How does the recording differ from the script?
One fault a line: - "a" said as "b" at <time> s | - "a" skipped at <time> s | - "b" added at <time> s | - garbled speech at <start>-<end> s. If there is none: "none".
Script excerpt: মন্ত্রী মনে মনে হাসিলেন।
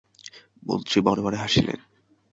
none